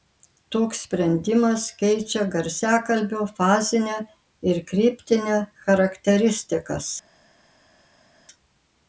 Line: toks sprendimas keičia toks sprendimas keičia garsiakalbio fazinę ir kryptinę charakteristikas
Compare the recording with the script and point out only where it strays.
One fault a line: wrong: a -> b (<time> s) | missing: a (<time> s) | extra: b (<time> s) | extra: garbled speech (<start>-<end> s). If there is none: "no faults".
missing: toks sprendimas keičia (2.2 s)